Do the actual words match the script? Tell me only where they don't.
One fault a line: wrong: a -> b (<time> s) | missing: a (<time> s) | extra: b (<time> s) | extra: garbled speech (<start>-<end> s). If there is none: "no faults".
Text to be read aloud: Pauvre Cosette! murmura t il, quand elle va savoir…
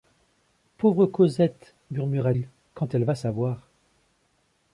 missing: t (2.3 s)